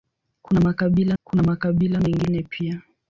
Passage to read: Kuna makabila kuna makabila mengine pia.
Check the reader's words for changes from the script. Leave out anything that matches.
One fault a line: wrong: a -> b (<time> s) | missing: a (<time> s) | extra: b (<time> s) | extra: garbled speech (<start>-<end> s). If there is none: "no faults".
no faults